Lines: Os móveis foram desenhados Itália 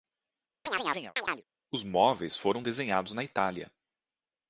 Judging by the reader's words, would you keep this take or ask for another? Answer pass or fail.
fail